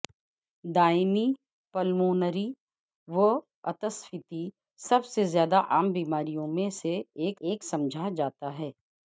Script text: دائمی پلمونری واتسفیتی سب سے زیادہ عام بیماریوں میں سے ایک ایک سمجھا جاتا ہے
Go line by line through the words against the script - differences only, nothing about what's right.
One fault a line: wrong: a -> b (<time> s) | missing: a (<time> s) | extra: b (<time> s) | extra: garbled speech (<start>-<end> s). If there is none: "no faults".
no faults